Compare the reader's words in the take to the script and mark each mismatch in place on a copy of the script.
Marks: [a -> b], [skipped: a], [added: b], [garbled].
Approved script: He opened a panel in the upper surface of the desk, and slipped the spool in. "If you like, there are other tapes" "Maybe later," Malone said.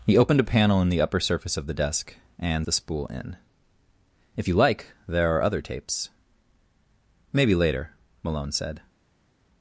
He opened a panel in the upper surface of the desk, and [skipped: slipped] the spool in. "If you like, there are other tapes" "Maybe later," Malone said.